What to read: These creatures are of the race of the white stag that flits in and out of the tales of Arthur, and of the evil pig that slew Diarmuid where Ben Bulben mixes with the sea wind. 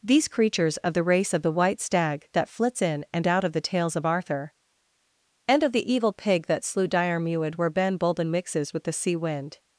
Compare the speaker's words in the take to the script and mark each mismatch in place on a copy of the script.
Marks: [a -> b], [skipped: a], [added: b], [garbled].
These creatures [skipped: are] of the race of the white stag that flits in and out of the tales of Arthur, and of the evil pig that slew Diarmuid where Ben Bulben mixes with the sea wind.